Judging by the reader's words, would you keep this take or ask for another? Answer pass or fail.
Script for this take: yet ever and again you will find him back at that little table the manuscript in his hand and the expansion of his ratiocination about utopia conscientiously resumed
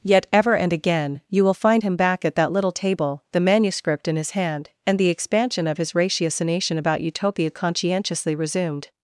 pass